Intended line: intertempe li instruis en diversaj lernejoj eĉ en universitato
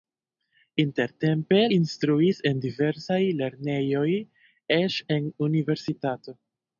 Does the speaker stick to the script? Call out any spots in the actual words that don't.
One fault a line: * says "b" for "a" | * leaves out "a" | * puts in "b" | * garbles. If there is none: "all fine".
* leaves out "li"